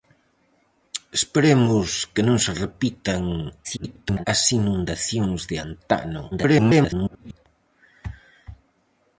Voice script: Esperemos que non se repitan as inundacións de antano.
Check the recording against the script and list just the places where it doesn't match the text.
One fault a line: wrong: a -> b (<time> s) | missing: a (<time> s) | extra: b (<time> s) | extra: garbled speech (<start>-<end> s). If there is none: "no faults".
extra: garbled speech (3.6-4.3 s)
extra: garbled speech (6.3-7.5 s)